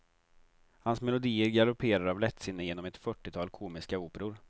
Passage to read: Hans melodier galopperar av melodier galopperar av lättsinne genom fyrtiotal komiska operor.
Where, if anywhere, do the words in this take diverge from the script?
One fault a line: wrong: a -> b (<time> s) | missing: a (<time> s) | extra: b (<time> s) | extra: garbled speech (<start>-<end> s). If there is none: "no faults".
missing: melodier galopperar av (2.2 s)
extra: ett (2.9 s)